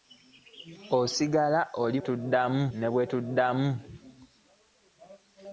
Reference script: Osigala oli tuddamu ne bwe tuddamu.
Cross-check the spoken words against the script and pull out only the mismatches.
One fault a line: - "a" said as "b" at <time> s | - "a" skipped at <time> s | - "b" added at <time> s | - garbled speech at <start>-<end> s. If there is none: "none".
none